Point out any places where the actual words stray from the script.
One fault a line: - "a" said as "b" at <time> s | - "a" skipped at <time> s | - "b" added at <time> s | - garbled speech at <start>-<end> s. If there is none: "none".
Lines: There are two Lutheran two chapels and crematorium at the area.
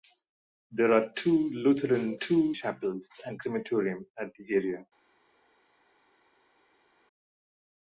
none